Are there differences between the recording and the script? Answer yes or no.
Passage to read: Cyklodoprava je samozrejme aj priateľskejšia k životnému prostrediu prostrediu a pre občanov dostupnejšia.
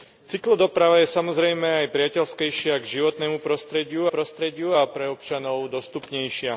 no